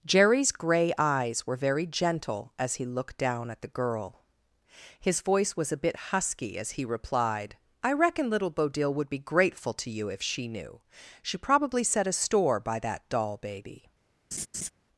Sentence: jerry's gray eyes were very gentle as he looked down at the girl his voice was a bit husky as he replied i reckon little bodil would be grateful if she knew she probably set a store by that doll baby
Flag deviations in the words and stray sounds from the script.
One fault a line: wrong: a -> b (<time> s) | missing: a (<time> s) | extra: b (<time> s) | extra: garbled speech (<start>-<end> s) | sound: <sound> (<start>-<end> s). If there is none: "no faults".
extra: to you (9.7 s)
sound: laugh (14.3-14.7 s)